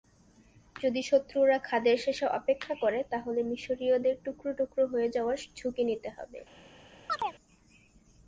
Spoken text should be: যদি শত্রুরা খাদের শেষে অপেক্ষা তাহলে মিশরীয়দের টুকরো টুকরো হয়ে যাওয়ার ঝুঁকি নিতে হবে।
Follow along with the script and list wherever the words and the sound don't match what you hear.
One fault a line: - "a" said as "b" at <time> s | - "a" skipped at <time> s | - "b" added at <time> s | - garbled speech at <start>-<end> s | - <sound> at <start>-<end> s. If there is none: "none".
- "করে" added at 2.8 s
- chirp at 7.1-7.3 s